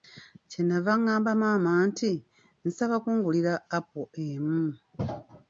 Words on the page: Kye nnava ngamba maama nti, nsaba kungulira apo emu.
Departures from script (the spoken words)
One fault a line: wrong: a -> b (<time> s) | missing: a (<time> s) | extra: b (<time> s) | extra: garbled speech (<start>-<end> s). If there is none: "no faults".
no faults